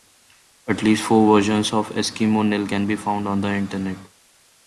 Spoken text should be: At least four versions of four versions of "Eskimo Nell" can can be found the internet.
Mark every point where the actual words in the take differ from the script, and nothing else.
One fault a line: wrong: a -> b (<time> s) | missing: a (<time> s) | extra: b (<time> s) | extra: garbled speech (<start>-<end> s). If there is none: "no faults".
missing: four versions of (1.9 s)
missing: can (2.9 s)
extra: on (3.3 s)